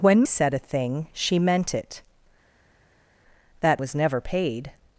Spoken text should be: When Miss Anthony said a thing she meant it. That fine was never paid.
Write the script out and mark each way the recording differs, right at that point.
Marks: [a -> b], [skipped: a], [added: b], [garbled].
When [skipped: Miss Anthony] said a thing she meant it. That [skipped: fine] was never paid.